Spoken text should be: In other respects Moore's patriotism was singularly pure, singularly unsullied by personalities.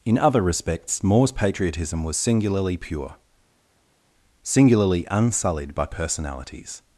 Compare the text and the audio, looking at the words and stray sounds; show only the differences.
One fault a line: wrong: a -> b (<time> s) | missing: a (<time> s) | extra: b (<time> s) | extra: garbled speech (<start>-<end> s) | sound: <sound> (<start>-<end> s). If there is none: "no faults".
no faults